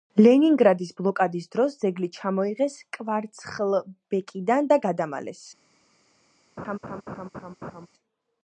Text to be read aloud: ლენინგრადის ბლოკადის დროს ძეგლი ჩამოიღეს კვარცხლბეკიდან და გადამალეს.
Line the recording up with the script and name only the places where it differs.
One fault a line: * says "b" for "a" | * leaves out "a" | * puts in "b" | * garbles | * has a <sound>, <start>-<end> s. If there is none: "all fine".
* has a laugh, 6.6-7.9 s